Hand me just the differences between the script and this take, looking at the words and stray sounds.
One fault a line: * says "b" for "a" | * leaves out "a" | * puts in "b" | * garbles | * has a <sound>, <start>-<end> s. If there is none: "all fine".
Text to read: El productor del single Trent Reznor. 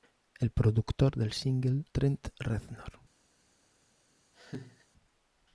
* has a laugh, 4.3-4.9 s